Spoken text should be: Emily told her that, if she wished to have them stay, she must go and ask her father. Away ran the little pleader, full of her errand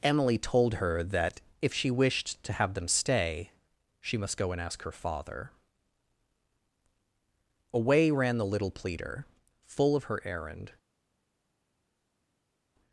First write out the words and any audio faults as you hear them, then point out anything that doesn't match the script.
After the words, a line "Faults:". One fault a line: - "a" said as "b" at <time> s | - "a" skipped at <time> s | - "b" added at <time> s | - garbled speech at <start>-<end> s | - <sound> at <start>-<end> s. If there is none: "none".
Emily told her that, if she wished to have them stay, she must go and ask her father. Away ran the little pleader, full of her errand
Faults:
none